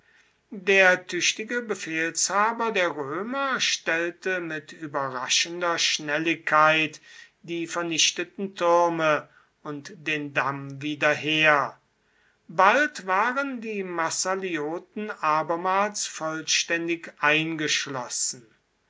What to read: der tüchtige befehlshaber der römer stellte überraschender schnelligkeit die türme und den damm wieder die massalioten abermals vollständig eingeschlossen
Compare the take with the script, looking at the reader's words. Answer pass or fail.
fail